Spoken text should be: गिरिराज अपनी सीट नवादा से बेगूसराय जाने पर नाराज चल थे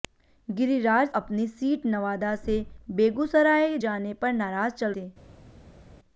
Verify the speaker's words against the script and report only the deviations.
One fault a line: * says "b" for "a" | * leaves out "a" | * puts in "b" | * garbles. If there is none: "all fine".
all fine